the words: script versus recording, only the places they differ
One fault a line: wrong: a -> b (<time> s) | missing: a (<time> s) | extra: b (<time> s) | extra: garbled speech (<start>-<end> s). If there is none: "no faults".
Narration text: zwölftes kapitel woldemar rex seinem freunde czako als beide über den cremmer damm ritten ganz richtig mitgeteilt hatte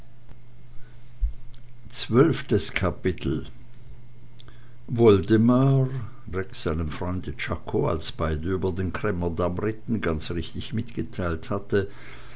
no faults